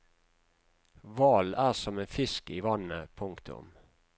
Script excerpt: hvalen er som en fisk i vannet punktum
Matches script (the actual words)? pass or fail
pass